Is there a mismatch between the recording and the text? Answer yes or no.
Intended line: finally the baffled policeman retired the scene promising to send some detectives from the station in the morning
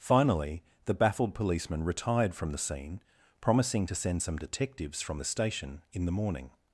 yes